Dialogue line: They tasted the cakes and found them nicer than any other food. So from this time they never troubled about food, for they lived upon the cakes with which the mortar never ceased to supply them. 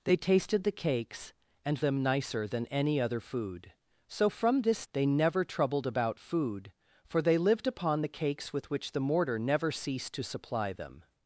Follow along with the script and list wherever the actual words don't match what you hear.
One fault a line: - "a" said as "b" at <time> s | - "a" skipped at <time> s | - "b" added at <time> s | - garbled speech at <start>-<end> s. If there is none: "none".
- "found" skipped at 1.8 s
- "time" skipped at 4.9 s